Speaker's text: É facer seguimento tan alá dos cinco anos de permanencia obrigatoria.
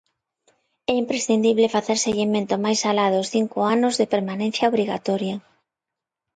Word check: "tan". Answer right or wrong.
wrong